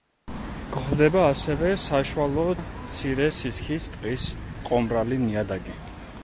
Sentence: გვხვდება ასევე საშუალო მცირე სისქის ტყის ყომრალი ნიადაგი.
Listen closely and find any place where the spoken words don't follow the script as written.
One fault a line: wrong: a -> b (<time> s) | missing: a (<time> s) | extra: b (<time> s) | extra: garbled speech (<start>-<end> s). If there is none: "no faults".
no faults